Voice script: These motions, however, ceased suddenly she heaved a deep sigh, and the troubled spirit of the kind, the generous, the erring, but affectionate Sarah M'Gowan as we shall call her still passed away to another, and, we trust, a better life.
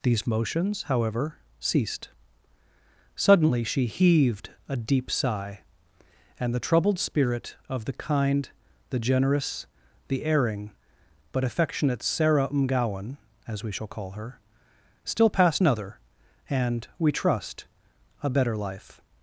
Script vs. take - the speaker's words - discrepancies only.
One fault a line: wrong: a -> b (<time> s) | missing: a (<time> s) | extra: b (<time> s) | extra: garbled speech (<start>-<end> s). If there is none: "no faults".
missing: away to (15.6 s)